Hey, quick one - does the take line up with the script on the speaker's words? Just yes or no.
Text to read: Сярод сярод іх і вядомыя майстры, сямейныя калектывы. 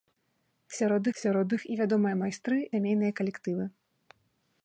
yes